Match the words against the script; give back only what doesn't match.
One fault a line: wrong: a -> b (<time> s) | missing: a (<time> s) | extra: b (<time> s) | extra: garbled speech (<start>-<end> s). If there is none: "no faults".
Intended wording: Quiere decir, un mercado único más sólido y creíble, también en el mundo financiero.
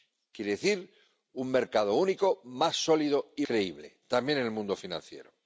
no faults